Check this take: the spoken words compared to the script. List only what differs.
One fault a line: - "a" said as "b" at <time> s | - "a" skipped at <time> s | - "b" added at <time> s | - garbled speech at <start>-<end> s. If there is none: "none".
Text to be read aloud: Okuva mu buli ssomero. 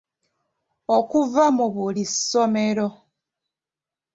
none